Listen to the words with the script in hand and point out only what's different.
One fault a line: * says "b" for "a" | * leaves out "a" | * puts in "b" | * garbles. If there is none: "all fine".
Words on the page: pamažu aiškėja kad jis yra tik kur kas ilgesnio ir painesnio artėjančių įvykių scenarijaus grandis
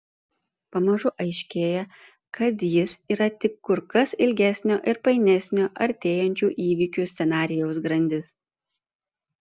all fine